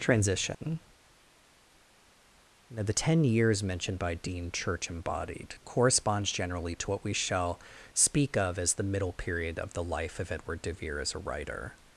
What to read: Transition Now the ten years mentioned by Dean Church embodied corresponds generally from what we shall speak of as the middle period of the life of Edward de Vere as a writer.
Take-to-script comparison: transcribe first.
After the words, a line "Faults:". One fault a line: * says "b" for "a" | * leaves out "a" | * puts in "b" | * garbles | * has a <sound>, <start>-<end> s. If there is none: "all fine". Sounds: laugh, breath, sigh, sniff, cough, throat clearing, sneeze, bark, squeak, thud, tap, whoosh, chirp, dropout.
Transition Now the ten years mentioned by Dean Church embodied corresponds generally to what we shall speak of as the middle period of the life of Edward de Vere as a writer.
Faults:
* has a dropout, 0.5-0.6 s
* says "to" for "from"